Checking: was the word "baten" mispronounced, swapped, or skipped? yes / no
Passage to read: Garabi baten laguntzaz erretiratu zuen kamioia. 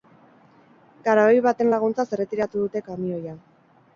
no